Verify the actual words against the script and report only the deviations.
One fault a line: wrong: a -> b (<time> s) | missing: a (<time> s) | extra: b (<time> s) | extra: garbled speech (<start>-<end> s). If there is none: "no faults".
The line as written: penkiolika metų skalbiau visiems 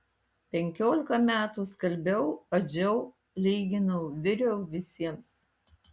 extra: adžiau lyginau viriau (2.6 s)